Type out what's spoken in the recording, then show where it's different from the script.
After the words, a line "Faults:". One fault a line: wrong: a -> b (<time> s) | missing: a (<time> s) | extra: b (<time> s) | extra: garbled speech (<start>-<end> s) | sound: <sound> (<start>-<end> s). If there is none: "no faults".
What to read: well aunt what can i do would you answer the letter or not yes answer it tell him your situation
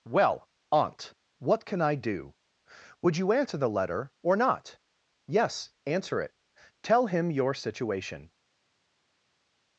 well aunt what can i do would you answer the letter or not yes answer it tell him your situation
Faults:
no faults